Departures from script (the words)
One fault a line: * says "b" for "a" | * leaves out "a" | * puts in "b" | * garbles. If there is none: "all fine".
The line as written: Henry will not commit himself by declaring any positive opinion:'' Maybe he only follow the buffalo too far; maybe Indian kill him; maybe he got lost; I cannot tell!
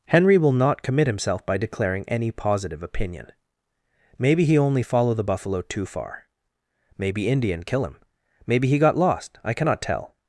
all fine